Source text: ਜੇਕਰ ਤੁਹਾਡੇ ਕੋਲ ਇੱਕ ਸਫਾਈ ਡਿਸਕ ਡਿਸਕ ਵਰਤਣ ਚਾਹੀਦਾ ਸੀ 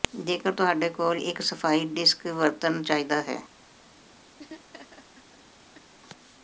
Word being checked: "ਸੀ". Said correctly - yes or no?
no